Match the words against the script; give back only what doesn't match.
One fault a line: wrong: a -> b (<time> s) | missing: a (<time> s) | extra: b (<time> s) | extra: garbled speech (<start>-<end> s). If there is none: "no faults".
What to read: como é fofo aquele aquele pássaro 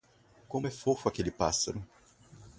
missing: aquele (1.3 s)